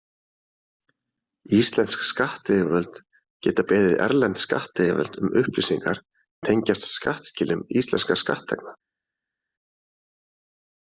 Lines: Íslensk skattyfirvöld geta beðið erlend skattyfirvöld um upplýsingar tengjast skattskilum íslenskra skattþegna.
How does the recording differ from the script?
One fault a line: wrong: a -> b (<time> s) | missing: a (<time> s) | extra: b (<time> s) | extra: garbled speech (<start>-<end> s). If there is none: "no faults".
no faults